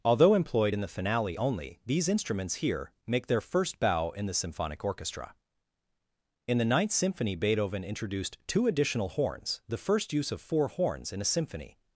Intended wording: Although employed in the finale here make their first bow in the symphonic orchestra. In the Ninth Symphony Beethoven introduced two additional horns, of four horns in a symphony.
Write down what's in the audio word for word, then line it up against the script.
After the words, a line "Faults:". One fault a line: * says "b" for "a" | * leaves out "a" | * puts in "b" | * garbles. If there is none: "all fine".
Although employed in the finale only, these instruments here make their first bow in the symphonic orchestra. In the Ninth Symphony Beethoven introduced two additional horns, the first use of four horns in a symphony.
Faults:
* puts in "only these instruments"
* puts in "the first use"